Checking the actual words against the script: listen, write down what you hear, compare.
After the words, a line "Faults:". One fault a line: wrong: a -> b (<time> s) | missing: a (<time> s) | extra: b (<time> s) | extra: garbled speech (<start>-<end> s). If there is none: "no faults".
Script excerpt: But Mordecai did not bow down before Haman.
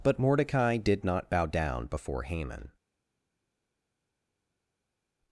But Mordecai did not bow down before Haman.
Faults:
no faults